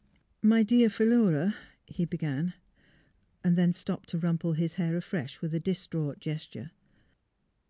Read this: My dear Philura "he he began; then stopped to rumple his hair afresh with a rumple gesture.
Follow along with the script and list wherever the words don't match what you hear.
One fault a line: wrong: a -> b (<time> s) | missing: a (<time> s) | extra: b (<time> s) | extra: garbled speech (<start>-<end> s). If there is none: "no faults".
missing: he (2.0 s)
wrong: rumple -> distraught (5.6 s)